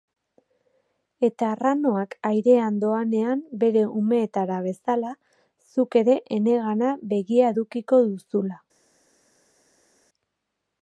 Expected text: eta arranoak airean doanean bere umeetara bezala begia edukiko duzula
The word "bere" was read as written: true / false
true